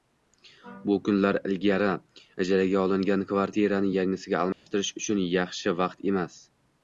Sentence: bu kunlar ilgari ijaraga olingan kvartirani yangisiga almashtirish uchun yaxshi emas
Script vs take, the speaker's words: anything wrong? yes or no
yes